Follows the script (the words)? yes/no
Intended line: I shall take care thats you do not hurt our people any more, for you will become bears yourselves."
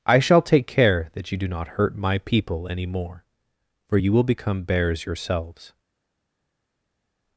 no